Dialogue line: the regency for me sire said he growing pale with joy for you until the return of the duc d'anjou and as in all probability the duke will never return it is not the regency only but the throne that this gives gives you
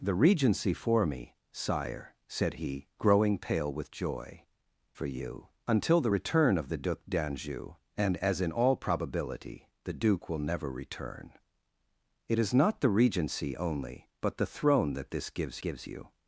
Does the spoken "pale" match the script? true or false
true